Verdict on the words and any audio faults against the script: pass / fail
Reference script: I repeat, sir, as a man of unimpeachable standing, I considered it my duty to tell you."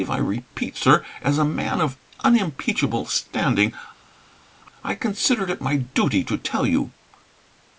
pass